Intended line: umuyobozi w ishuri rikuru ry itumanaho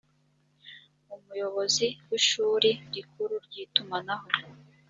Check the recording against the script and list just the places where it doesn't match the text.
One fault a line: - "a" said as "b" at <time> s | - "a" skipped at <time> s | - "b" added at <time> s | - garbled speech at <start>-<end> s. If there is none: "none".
none